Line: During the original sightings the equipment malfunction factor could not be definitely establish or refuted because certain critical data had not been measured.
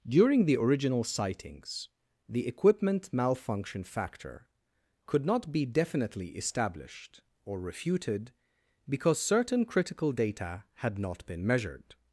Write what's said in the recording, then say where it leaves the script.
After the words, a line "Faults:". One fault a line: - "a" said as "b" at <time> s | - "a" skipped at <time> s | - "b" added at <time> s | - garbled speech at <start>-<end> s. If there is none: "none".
During the original sightings the equipment malfunction factor could not be definitely established or refuted because certain critical data had not been measured.
Faults:
- "establish" said as "established" at 6.3 s